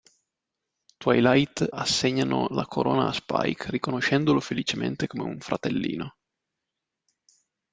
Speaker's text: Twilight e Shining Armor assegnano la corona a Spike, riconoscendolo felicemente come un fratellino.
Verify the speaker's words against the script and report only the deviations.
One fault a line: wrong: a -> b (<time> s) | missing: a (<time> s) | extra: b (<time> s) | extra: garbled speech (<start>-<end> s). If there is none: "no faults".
missing: e Shining Armor (1.7 s)